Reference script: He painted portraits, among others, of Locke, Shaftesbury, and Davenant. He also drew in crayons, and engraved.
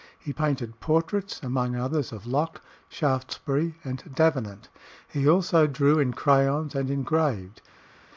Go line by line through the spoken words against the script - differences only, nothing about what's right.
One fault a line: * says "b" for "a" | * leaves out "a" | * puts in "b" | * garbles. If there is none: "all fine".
all fine